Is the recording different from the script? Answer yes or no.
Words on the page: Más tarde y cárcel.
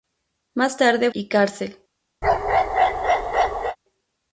no